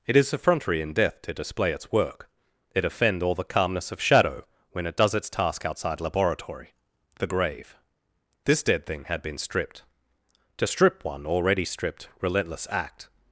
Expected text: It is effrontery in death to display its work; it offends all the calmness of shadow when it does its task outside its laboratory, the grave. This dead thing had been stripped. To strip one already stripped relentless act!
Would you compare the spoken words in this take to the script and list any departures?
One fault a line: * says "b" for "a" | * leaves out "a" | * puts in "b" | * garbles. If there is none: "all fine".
* says "offend" for "offends"
* leaves out "its"